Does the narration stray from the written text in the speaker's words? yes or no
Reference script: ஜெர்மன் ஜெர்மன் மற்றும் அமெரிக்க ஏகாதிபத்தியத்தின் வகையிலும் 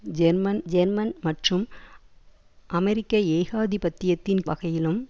no